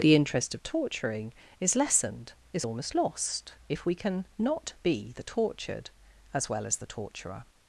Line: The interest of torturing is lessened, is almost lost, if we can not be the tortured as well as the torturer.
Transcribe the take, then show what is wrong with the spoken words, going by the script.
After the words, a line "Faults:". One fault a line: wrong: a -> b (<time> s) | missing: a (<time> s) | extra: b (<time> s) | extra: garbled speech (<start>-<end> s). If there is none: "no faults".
The interest of torturing is lessened, is almost lost, if we can not be the tortured as well as the torturer.
Faults:
no faults